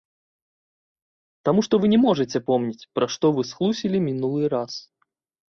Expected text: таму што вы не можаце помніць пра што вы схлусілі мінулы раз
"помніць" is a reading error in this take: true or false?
false